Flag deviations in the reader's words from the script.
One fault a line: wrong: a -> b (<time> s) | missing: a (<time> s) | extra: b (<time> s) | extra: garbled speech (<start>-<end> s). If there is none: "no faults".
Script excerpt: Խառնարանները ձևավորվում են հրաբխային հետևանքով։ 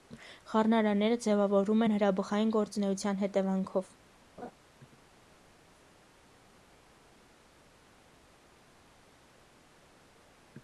extra: գործունեության (2.6 s)